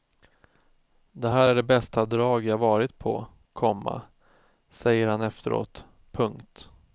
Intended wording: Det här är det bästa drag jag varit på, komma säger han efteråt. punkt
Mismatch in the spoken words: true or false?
false